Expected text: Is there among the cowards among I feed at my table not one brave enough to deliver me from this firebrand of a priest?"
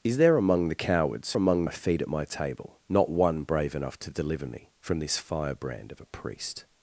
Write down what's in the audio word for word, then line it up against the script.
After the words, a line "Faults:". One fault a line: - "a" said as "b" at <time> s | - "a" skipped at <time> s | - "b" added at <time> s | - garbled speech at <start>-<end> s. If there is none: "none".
Is there among the cowards among I feed at my table not one brave enough to deliver me from this firebrand of a priest?"
Faults:
none